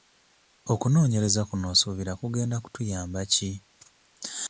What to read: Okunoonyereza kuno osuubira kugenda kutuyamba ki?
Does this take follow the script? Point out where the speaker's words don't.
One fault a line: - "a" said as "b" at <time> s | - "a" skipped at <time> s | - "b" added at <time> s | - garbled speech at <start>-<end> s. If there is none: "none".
none